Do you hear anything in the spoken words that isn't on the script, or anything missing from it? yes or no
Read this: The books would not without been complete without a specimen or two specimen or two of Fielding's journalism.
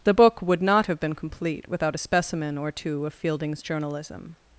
yes